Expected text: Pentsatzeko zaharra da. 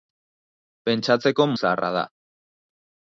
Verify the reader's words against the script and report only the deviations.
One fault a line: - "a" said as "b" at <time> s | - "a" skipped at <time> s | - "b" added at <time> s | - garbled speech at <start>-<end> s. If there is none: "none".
none